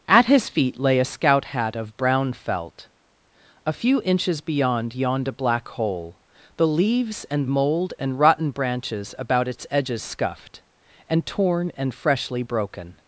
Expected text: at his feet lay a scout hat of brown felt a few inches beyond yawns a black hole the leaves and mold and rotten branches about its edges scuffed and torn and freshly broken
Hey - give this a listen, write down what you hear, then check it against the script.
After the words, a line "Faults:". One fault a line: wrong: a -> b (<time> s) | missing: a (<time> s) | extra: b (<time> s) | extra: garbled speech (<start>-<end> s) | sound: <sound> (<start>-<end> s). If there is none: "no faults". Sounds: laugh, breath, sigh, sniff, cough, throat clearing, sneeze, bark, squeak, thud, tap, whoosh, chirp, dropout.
at his feet lay a scout hat of brown felt a few inches beyond yawned a black hole the leaves and mold and rotten branches about its edges scuffed and torn and freshly broken
Faults:
wrong: yawns -> yawned (5.0 s)